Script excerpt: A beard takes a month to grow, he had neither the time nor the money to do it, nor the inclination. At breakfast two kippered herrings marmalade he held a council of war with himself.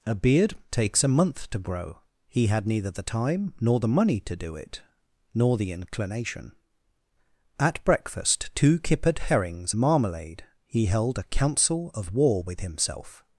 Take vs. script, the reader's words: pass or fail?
pass